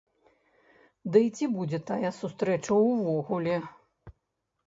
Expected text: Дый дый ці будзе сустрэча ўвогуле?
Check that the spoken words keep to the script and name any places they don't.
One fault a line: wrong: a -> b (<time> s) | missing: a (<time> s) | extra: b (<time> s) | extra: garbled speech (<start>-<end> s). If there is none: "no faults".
missing: дый (1.2 s)
extra: тая (1.9 s)